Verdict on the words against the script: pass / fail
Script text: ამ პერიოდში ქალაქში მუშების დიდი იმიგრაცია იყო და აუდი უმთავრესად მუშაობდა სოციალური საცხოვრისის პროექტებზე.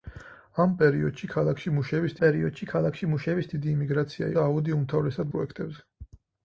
fail